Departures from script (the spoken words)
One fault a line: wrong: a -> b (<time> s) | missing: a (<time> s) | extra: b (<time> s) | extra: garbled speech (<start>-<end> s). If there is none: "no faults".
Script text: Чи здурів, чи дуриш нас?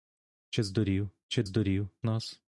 wrong: дуриш -> здурів (1.4 s)